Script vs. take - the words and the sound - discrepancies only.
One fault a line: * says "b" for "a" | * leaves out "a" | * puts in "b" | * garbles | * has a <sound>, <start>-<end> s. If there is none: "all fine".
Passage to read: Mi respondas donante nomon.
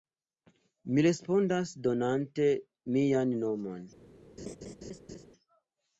* puts in "mian"
* has a laugh, 4.4-5.3 s